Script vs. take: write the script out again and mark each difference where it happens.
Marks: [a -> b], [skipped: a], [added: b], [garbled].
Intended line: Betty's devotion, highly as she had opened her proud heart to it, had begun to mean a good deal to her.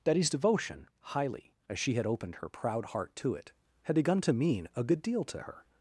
Betty's devotion, highly as she had opened her proud heart to it, had begun to mean a good deal to her.